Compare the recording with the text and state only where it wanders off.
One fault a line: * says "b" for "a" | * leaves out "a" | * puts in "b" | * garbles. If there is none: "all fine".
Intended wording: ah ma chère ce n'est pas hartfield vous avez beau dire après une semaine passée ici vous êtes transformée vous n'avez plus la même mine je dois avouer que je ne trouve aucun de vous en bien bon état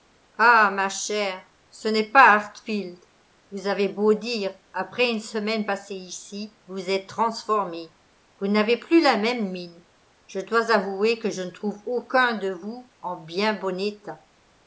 all fine